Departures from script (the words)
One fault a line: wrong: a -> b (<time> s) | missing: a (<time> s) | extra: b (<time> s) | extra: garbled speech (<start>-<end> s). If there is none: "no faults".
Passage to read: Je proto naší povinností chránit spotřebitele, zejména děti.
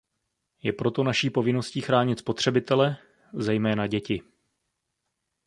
no faults